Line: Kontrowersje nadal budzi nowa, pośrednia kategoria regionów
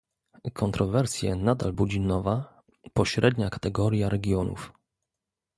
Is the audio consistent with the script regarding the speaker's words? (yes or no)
yes